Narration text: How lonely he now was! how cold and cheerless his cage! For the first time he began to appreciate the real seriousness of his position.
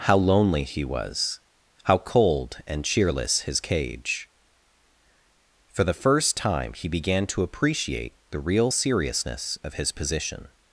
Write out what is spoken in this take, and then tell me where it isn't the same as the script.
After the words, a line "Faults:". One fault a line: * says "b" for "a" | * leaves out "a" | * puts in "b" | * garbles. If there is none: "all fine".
How lonely he was! how cold and cheerless his cage! For the first time he began to appreciate the real seriousness of his position.
Faults:
* leaves out "now"